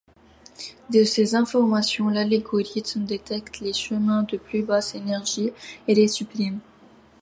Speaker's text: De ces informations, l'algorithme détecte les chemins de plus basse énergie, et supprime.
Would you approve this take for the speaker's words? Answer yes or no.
no